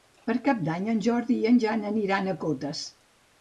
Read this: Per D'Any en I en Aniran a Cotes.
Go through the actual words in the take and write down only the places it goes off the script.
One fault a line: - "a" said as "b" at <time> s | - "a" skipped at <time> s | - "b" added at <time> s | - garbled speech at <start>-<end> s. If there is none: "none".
- "Cap" added at 0.5 s
- "Jordi" added at 1.1 s
- "Jan" added at 1.6 s